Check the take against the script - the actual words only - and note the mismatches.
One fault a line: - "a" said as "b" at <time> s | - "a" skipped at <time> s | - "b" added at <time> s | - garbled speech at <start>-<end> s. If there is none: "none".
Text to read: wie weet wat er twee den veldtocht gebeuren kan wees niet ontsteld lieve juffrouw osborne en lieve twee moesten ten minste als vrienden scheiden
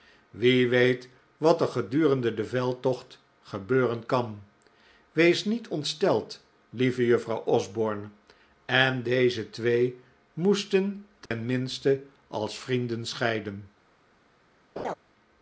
- "twee" said as "gedurende" at 1.7 s
- "lieve" said as "deze" at 9.0 s